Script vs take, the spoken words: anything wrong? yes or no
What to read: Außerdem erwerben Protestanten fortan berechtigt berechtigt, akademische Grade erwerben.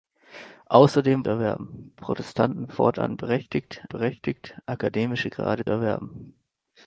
no